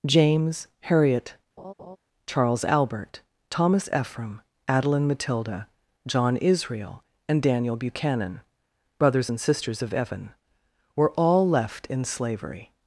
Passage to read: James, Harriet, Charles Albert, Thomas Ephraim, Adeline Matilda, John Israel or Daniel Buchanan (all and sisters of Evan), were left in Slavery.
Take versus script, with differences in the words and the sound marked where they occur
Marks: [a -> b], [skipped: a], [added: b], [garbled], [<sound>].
James, Harriet, [laugh] Charles Albert, Thomas Ephraim, Adeline Matilda, John Israel [or -> and] Daniel Buchanan [(all -> brothers] and sisters of Evan), were [added: all] left in Slavery.